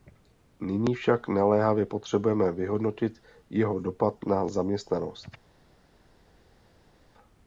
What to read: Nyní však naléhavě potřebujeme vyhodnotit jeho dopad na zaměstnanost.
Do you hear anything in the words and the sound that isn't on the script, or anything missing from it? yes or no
no